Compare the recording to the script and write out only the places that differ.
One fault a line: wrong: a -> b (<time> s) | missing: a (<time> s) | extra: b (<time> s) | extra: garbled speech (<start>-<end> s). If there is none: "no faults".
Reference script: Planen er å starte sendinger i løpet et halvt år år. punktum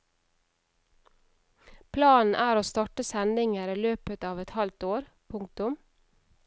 extra: av (4.3 s)
missing: år (5.1 s)